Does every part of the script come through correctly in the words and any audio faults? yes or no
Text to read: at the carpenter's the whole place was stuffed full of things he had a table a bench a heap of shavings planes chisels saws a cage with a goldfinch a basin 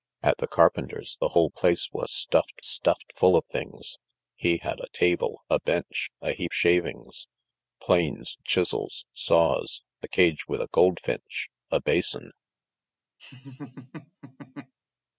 no